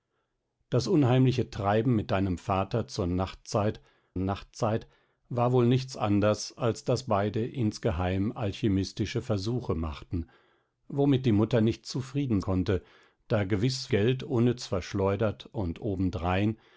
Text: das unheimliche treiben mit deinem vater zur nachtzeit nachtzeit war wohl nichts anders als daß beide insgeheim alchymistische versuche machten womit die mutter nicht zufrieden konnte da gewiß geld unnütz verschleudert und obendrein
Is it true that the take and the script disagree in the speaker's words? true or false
false